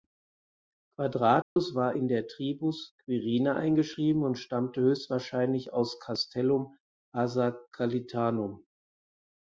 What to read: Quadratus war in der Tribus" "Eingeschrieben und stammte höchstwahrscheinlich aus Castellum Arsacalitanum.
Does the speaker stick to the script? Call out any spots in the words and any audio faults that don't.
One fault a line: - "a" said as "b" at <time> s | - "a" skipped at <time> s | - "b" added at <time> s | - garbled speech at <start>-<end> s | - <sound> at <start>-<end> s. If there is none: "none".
- dropout at 1.4-1.6 s
- "Quirina" added at 3.0 s